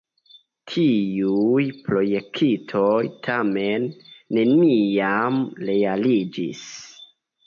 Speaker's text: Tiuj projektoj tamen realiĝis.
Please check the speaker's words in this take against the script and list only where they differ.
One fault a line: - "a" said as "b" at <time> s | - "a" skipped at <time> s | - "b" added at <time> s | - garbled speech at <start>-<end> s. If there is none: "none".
- "neniam" added at 4.4 s